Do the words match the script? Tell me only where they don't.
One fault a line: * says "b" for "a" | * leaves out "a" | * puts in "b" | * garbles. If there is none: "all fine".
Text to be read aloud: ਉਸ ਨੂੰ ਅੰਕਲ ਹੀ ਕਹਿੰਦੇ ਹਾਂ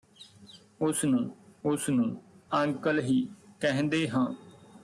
* puts in "ਉਸ ਨੂੰ"